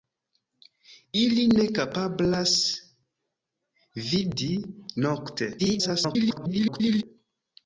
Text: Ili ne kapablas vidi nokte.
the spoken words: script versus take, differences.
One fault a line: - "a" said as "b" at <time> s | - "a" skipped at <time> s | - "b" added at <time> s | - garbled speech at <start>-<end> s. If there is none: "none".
- garbled speech at 5.6-7.0 s